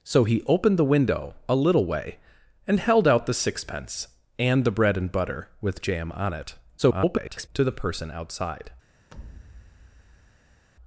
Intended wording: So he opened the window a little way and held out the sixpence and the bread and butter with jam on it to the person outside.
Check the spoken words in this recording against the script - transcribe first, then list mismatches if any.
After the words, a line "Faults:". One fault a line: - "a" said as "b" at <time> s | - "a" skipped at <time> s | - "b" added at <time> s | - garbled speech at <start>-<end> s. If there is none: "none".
So he opened the window a little way and held out the sixpence and the bread and butter with jam on it [garbled] to the person outside.
Faults:
- garbled speech at 6.8-7.5 s